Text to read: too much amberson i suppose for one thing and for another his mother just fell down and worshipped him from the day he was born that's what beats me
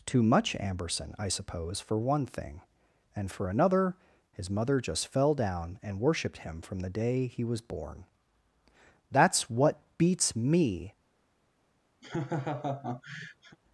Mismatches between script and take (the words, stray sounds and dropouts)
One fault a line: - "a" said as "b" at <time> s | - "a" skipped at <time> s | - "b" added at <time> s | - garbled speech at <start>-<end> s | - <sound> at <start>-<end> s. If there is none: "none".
- laugh at 12.0-13.6 s